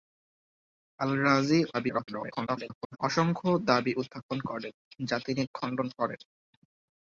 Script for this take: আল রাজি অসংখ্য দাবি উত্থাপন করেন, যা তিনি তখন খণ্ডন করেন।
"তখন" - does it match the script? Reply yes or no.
no